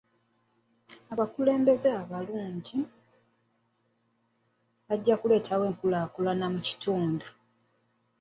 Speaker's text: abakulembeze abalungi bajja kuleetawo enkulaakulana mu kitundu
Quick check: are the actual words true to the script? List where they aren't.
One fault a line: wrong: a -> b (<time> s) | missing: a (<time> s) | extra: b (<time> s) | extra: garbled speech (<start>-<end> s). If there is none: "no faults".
no faults